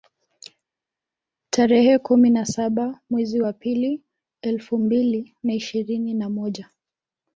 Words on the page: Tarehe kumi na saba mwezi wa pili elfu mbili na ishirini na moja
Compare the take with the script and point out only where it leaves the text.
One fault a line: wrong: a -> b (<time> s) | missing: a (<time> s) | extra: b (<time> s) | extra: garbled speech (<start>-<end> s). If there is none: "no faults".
no faults